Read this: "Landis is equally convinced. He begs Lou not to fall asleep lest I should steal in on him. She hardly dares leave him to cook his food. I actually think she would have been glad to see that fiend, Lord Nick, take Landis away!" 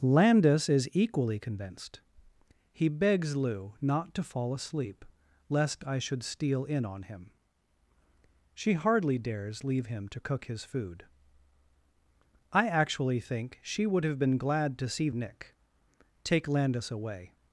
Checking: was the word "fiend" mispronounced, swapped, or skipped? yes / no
yes